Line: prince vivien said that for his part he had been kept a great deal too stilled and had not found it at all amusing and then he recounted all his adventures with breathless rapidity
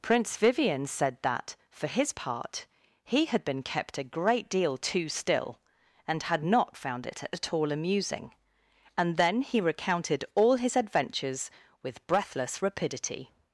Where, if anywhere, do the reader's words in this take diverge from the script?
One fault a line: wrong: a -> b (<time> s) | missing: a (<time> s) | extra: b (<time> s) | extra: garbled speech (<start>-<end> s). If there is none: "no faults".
wrong: stilled -> still (5.1 s)